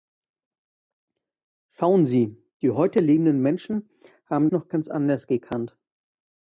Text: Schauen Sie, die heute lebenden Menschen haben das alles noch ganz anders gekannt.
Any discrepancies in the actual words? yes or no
yes